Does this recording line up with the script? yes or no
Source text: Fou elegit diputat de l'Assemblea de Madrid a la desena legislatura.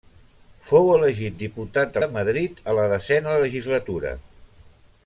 no